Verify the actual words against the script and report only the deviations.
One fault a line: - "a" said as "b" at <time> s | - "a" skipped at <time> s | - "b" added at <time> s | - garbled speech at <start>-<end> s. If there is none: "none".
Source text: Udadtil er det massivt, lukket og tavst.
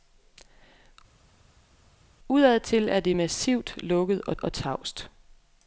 - "og" added at 4.4 s